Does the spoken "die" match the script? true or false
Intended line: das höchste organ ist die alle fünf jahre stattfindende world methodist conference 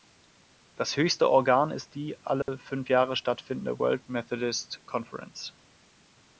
true